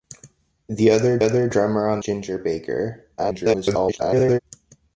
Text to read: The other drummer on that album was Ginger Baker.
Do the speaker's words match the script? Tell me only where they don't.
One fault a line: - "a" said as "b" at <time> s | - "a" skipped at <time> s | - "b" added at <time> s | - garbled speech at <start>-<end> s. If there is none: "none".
- "other" added at 1.2 s
- "that album was" skipped at 2.0 s
- garbled speech at 3.2-4.4 s